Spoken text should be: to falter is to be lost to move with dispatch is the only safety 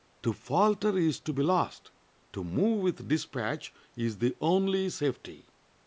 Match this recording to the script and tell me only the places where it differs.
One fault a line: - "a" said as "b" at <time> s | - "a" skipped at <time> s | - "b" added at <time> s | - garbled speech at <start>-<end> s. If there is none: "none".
none